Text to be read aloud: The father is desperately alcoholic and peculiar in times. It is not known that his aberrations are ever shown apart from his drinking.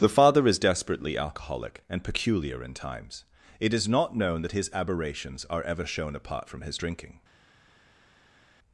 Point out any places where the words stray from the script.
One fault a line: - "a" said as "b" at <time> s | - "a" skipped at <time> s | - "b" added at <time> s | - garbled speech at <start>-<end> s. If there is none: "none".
none